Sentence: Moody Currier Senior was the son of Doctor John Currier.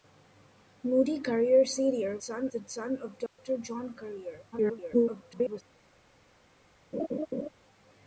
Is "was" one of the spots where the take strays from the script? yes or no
yes